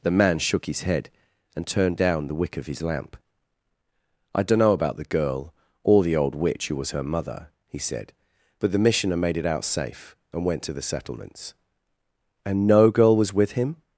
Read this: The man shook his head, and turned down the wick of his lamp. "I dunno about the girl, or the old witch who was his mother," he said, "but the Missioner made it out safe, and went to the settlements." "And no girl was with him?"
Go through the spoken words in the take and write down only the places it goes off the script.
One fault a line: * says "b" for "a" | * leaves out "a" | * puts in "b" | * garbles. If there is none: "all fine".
* says "her" for "his"